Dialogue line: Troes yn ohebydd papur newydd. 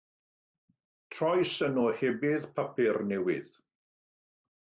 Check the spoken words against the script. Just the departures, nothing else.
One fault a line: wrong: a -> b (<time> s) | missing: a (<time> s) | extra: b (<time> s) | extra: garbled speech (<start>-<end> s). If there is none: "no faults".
no faults